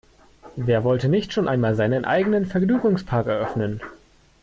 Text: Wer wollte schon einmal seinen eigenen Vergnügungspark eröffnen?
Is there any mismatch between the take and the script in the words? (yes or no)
yes